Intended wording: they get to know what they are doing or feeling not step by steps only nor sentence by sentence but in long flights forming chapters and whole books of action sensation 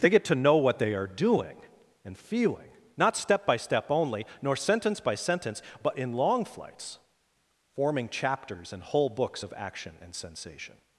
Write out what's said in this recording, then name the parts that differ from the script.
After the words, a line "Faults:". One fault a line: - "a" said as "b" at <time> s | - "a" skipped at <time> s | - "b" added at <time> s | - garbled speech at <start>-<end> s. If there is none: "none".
they get to know what they are doing and feeling not step by step only nor sentence by sentence but in long flights forming chapters and whole books of action and sensation
Faults:
- "or" said as "and" at 2.0 s
- "steps" said as "step" at 3.6 s
- "and" added at 10.0 s